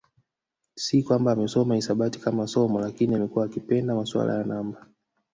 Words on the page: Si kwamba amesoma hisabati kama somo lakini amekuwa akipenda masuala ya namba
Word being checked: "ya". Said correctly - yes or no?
yes